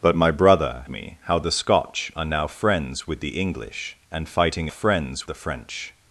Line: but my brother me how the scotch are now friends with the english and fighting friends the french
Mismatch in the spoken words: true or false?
false